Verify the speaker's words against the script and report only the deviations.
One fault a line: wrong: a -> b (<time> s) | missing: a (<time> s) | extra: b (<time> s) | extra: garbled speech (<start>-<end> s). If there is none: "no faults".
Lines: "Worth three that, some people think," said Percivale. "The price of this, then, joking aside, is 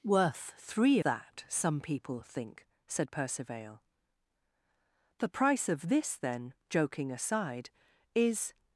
no faults